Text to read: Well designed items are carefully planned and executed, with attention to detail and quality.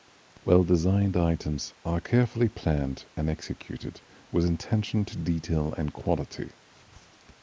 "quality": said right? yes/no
yes